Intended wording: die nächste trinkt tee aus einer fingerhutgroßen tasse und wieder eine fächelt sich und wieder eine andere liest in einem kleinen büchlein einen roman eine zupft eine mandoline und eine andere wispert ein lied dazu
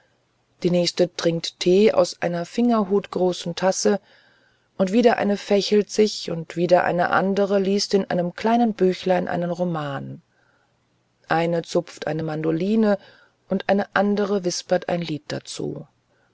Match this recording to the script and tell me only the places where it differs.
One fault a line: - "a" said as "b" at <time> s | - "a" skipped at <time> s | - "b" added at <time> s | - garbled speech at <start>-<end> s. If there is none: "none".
none